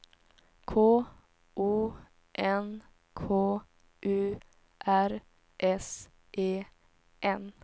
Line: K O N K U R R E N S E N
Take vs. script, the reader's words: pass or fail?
fail